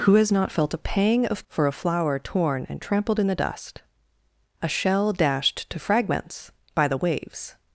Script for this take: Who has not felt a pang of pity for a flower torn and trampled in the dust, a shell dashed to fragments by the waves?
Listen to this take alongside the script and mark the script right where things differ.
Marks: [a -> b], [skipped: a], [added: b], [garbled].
Who has not felt a pang of [skipped: pity] for a flower torn and trampled in the dust, a shell dashed to fragments by the waves?